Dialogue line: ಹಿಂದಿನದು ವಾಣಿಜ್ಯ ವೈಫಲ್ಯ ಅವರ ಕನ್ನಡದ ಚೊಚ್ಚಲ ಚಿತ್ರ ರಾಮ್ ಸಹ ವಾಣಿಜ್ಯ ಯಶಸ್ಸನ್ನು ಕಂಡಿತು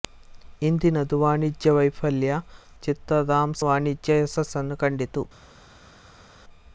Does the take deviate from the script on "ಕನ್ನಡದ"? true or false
true